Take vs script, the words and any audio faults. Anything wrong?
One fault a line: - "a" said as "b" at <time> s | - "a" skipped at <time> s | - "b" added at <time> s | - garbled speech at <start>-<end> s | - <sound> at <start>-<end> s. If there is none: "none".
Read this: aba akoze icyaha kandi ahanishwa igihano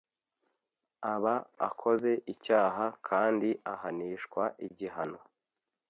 none